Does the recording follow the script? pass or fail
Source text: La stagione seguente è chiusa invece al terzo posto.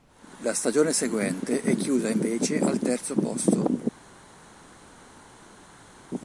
pass